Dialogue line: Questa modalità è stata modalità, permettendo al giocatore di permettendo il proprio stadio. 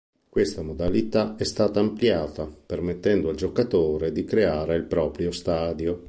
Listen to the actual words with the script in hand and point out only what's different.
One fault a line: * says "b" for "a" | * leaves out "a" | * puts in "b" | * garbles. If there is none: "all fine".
* says "ampliata" for "modalità"
* says "creare" for "permettendo"